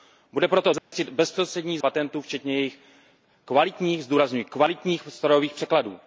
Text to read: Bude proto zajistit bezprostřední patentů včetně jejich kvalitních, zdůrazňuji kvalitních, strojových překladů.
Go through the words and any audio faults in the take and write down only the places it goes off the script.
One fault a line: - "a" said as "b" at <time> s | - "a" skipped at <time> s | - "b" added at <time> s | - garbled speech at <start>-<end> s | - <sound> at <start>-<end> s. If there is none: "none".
- dropout at 0.8-0.9 s